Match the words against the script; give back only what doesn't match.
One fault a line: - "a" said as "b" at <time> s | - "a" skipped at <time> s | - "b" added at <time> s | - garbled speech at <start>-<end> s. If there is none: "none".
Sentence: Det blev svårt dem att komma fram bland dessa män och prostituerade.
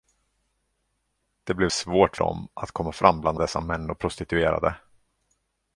none